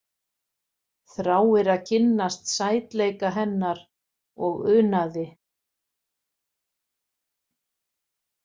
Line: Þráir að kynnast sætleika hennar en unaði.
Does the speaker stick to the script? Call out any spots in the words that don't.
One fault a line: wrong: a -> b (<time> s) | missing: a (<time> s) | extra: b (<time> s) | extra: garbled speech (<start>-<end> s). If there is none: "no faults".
wrong: en -> og (4.5 s)